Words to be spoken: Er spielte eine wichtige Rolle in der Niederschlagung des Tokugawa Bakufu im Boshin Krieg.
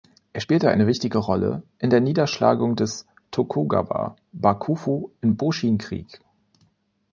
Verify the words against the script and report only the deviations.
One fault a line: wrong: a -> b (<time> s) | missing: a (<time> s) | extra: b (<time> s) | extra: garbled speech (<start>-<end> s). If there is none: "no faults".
no faults